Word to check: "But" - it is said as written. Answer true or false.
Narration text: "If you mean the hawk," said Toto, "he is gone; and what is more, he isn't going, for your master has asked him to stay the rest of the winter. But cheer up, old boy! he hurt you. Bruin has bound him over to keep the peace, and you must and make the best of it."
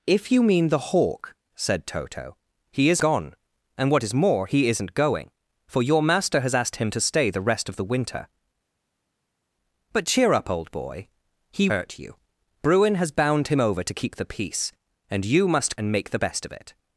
true